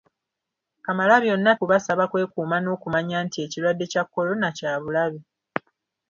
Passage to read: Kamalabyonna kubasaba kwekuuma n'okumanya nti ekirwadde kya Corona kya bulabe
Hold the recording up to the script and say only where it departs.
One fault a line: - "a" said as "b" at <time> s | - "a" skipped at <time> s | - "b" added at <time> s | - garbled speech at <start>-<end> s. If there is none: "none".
none